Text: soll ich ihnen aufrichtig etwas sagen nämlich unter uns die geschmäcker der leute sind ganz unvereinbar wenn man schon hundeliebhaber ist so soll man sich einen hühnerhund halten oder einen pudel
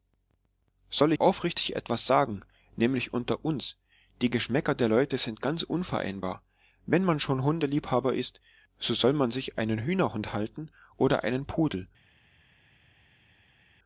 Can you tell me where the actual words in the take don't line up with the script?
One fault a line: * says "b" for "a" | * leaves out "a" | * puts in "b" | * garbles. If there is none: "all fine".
* leaves out "ich ihnen"